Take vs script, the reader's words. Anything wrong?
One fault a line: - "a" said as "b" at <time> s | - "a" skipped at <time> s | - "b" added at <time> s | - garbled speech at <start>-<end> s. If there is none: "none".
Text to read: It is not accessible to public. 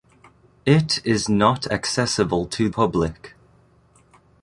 none